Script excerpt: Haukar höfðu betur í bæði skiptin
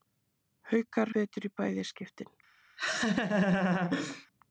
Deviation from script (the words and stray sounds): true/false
true